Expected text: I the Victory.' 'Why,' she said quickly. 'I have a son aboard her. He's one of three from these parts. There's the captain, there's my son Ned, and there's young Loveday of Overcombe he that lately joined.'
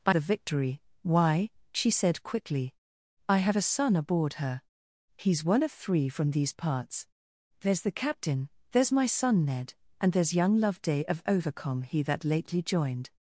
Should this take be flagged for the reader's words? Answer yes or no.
no